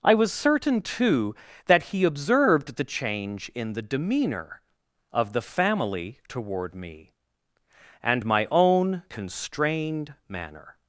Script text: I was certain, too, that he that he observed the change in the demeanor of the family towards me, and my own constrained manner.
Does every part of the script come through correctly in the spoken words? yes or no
no